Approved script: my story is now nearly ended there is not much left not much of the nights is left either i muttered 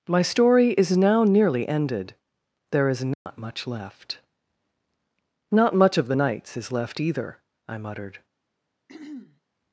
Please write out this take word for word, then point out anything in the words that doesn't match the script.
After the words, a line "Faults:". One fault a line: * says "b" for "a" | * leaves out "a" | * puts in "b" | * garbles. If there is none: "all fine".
my story is now nearly ended there is not much left not much of the nights is left either i muttered
Faults:
all fine